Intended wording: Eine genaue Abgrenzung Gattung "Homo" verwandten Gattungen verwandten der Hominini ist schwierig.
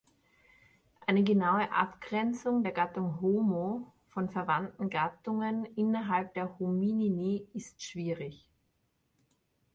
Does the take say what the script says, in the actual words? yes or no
no